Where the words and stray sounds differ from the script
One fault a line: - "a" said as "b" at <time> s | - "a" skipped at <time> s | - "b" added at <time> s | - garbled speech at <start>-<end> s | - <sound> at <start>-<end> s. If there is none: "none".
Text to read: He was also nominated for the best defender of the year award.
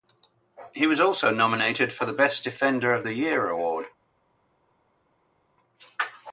none